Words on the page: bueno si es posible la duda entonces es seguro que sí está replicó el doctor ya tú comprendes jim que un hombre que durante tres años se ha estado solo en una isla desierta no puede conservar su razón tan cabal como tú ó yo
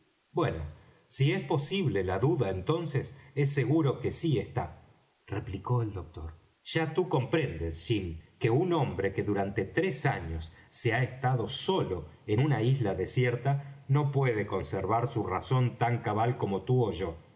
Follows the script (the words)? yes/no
yes